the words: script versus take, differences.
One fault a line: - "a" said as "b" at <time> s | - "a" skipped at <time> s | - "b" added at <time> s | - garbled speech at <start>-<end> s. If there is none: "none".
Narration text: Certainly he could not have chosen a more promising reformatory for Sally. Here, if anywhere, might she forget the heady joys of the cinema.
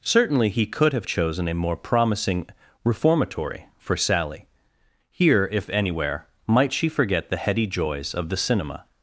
- "not" skipped at 0.9 s